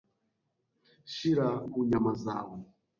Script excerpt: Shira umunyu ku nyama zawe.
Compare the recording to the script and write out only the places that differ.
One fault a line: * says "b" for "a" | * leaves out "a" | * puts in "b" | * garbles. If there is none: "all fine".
* leaves out "umunyu"